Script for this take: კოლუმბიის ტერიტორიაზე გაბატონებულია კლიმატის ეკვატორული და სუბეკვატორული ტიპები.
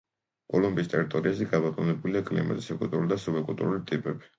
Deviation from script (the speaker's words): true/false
false